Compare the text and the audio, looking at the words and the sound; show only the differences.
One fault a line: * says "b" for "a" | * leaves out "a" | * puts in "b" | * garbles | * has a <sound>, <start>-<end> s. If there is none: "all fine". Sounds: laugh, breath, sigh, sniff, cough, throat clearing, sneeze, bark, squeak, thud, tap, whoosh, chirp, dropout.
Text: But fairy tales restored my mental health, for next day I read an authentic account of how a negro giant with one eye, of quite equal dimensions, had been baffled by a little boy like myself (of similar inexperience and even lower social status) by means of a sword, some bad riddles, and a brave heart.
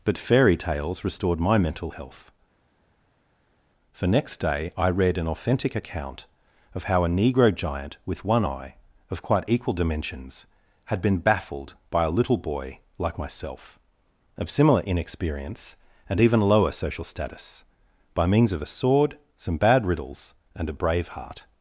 all fine